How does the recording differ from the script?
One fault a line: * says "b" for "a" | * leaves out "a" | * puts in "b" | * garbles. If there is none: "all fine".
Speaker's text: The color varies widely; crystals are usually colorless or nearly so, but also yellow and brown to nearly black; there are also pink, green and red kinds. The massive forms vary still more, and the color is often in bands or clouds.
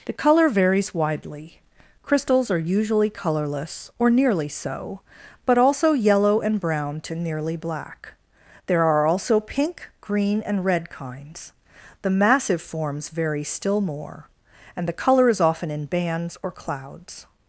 all fine